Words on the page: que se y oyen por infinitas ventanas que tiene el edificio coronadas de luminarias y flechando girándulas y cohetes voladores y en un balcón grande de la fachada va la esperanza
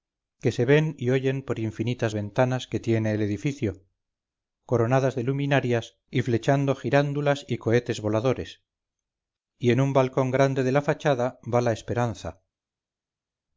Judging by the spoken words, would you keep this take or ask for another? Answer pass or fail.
fail